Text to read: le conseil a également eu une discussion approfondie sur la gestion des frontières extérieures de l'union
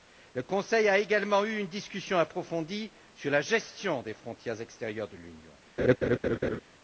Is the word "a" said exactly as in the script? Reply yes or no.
yes